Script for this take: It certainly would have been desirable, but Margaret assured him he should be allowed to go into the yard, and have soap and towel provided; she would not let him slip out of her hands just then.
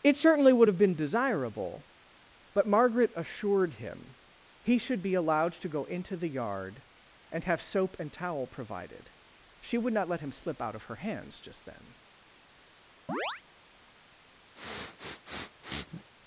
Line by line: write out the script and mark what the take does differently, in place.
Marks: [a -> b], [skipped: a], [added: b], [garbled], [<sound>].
It certainly would have been desirable, but Margaret assured him he should be allowed to go into the yard, and have soap and towel provided; she would not let him slip out of her hands just then. [chirp] [sniff]